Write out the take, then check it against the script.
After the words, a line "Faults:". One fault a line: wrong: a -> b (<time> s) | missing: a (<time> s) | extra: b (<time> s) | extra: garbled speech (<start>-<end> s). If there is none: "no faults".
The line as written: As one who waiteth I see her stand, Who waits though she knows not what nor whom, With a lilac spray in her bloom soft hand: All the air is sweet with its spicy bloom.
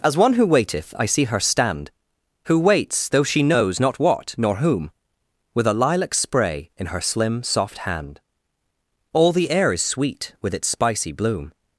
As one who waiteth I see her stand, Who waits though she knows not what nor whom, With a lilac spray in her slim soft hand: All the air is sweet with its spicy bloom.
Faults:
wrong: bloom -> slim (7.0 s)